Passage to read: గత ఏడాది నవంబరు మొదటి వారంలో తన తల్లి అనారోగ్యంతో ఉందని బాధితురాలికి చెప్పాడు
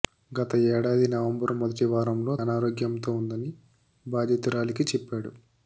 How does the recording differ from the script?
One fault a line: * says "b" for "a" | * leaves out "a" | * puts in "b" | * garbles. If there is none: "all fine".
* leaves out "తన తల్లి"